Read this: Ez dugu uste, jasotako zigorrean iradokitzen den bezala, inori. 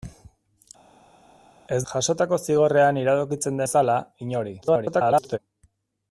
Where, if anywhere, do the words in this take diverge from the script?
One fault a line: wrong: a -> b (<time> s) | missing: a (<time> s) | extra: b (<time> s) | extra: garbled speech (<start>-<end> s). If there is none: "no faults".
missing: dugu uste (1.8 s)
missing: den (3.6 s)
extra: garbled speech (4.6-5.4 s)